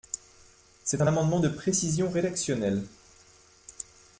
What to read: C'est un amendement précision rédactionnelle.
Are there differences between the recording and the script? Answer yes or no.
yes